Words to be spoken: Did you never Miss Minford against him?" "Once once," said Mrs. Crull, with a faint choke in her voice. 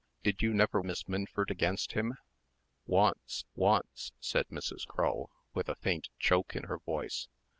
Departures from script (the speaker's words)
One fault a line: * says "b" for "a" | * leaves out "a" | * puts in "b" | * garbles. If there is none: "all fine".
all fine